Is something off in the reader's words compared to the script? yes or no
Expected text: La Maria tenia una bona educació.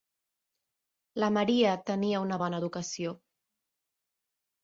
no